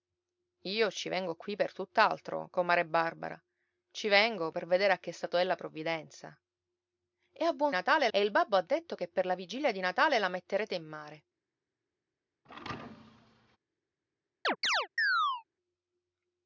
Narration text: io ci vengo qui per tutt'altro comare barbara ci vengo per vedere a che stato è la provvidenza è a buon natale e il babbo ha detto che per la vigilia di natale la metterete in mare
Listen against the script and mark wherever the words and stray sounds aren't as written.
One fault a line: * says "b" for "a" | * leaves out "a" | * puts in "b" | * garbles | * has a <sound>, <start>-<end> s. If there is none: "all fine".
* has a thud, 12.4-13.6 s
* has a chirp, 14.4-15.4 s